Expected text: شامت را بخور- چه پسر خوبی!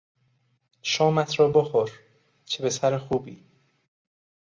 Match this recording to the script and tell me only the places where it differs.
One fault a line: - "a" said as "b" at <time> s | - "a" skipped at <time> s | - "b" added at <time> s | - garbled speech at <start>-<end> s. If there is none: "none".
none